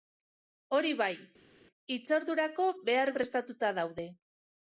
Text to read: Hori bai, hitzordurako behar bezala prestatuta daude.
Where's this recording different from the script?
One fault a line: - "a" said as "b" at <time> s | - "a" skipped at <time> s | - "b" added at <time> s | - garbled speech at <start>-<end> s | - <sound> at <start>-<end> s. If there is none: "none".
- "bezala" skipped at 3.1 s